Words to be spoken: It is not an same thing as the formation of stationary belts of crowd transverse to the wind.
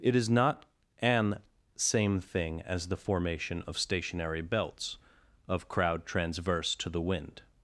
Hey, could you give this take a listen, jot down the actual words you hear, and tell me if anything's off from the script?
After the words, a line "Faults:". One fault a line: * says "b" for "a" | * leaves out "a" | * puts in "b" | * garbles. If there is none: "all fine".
It is not an same thing as the formation of stationary belts of crowd transverse to the wind.
Faults:
all fine